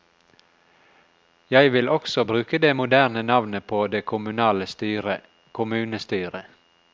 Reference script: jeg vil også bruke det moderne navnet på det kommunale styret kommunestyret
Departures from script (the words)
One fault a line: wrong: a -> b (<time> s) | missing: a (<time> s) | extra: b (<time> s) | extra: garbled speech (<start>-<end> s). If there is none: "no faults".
no faults